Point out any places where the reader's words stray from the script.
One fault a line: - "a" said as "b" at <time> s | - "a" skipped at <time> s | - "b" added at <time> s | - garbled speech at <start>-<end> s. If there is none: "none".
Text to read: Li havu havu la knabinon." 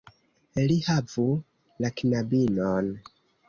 - "havu" skipped at 1.3 s